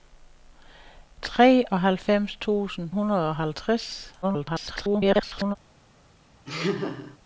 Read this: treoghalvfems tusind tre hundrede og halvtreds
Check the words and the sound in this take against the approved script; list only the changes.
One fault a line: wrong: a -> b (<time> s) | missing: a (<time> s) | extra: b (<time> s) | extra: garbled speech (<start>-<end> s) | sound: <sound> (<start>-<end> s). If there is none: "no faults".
missing: tre (2.9 s)
extra: garbled speech (4.2-5.6 s)
sound: laugh (6.5-7.2 s)